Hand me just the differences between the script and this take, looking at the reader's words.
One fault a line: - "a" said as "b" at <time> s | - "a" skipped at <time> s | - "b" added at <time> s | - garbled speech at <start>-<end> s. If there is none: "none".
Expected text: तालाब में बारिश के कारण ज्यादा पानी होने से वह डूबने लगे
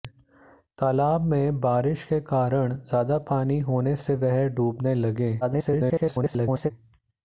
- garbled speech at 5.4-6.7 s